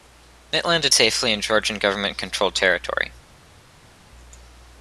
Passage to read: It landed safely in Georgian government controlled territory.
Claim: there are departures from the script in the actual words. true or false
false